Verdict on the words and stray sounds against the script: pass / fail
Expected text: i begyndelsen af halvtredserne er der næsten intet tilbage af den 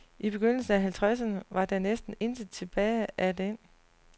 fail